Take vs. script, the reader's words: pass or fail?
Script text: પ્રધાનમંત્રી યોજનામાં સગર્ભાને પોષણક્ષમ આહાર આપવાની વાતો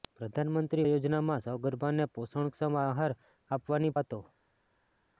pass